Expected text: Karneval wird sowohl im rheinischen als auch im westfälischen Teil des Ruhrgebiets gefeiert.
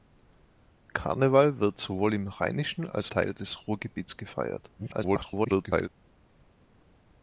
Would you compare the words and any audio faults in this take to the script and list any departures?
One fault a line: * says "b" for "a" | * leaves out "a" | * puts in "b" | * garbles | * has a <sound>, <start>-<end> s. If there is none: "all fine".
* leaves out "auch im westfälischen"
* garbles